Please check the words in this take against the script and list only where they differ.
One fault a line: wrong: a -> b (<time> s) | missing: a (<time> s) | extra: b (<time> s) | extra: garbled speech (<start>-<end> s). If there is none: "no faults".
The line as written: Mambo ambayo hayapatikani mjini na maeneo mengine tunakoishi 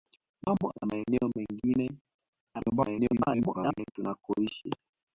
missing: ambayo hayapatikani mjini (0.7 s)
extra: garbled speech (2.5-3.9 s)